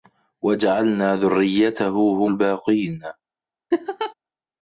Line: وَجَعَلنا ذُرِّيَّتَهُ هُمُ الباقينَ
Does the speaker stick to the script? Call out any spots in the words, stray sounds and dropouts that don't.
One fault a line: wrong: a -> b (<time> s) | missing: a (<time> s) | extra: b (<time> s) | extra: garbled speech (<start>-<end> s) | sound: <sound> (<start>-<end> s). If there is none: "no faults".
missing: هُمُ (2.2 s)
sound: laugh (3.7-4.1 s)